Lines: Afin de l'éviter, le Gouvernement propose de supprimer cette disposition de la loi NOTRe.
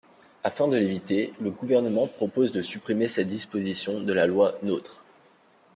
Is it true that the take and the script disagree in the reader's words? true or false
false